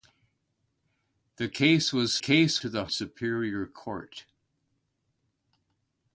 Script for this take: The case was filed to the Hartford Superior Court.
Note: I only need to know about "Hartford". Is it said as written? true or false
false